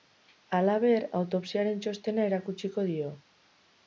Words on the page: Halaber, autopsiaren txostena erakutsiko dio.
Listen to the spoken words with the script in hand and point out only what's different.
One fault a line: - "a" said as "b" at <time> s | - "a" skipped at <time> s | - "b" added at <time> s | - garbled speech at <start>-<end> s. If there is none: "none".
none